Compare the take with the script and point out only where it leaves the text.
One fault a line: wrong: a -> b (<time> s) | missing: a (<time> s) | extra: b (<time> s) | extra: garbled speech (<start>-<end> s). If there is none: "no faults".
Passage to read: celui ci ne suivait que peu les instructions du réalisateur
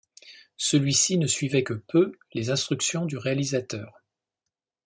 no faults